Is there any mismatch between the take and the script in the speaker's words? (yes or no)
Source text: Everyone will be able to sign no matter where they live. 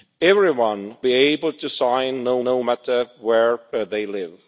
yes